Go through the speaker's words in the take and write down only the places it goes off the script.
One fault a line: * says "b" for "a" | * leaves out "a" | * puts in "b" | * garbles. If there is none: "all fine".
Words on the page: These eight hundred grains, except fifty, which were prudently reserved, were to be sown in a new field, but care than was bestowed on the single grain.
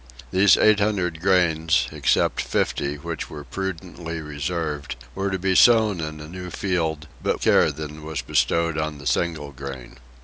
all fine